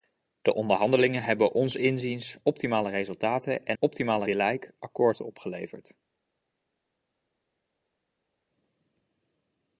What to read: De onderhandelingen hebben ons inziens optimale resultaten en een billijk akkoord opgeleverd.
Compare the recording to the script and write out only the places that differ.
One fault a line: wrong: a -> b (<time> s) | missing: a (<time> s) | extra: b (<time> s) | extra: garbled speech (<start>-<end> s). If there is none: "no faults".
wrong: een -> optimale (3.8 s)